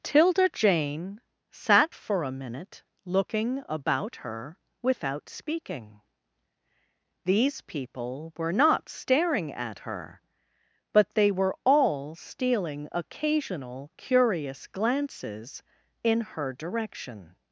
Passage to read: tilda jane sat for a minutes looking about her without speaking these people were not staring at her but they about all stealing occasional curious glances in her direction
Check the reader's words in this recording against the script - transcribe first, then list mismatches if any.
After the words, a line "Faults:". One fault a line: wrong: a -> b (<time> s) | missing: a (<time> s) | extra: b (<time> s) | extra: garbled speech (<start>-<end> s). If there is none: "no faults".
tilda jane sat for a minute looking about her without speaking these people were not staring at her but they were all stealing occasional curious glances in her direction
Faults:
wrong: minutes -> minute (2.3 s)
wrong: about -> were (11.3 s)